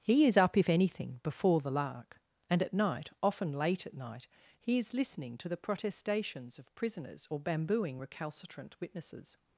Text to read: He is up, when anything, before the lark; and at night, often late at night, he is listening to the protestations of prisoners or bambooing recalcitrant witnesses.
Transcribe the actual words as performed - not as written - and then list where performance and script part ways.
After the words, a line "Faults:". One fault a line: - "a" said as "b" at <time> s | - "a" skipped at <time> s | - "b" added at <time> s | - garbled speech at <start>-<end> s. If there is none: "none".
He is up, if anything, before the lark; and at night, often late at night, he is listening to the protestations of prisoners or bambooing recalcitrant witnesses.
Faults:
- "when" said as "if" at 0.6 s